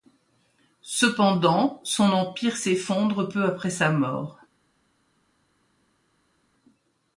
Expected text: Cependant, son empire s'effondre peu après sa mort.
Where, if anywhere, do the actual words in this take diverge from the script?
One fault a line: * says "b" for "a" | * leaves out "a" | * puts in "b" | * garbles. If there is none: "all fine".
all fine